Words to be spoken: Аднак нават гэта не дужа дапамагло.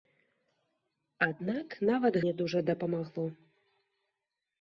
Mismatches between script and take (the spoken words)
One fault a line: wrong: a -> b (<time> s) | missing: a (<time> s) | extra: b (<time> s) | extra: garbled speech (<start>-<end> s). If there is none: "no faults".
missing: гэта (2.2 s)